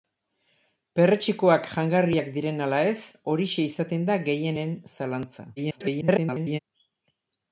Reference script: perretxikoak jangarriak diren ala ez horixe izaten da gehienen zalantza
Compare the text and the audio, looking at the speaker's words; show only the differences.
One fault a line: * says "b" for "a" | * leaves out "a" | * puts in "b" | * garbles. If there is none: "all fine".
* garbles